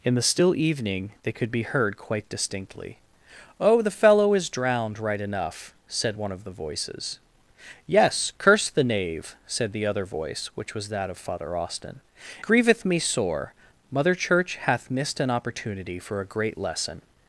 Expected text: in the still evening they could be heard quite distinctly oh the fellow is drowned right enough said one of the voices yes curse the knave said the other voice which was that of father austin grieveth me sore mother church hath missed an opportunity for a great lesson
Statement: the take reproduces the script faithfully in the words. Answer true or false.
true